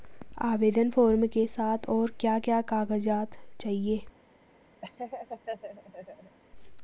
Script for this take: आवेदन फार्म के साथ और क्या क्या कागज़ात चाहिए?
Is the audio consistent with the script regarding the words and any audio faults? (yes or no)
no